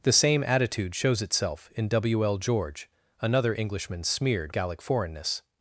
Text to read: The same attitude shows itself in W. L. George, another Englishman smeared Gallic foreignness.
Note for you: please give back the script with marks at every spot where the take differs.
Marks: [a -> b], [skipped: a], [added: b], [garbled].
The same attitude shows itself in W. L. George, another Englishman smeared Gallic foreignness.